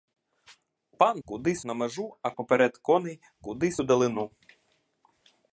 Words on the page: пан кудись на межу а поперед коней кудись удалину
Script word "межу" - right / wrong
right